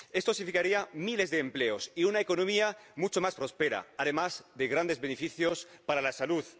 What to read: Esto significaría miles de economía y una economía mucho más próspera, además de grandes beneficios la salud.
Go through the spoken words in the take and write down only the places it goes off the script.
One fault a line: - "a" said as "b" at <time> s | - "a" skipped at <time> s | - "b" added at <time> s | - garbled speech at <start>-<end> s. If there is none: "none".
- "economía" said as "empleos" at 1.4 s
- "para" added at 5.9 s